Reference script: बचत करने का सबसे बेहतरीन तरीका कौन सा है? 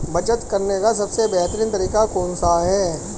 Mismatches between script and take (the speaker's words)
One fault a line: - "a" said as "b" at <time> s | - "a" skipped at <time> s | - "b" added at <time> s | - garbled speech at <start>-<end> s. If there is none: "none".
none